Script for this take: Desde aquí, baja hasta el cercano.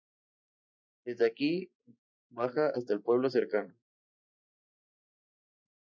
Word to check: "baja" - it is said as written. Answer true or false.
true